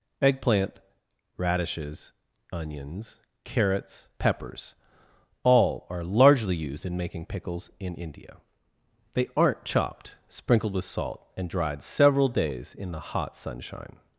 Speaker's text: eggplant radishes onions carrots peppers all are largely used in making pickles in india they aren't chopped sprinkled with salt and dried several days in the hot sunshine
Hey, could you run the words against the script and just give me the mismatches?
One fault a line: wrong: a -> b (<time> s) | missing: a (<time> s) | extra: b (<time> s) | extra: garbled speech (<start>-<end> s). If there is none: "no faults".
no faults